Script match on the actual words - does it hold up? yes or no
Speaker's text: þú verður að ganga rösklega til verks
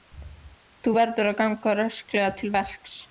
yes